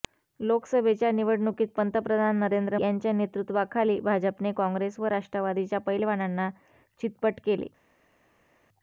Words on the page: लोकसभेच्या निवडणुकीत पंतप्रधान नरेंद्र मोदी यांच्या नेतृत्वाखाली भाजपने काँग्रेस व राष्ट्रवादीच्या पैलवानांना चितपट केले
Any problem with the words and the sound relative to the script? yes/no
yes